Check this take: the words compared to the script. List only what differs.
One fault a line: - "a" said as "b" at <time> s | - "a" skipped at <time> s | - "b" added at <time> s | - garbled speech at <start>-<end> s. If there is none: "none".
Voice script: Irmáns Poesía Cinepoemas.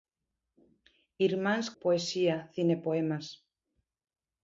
none